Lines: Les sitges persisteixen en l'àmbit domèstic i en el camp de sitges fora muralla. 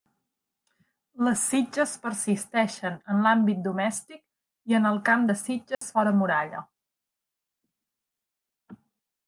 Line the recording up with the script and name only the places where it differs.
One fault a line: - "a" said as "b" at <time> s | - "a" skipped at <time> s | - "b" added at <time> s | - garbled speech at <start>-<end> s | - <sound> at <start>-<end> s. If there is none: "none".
- dropout at 5.7-5.8 s